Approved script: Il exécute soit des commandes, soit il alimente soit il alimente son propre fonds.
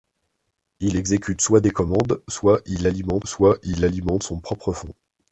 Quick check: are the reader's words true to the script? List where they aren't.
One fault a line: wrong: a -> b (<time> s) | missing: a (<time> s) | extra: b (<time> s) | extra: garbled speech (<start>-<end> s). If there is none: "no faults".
no faults